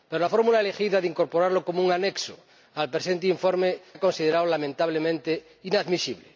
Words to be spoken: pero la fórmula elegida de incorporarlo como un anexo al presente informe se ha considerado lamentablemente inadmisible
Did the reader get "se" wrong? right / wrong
wrong